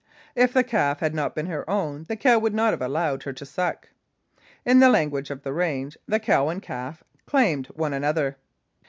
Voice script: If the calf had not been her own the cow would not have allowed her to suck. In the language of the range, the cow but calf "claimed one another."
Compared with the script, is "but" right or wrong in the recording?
wrong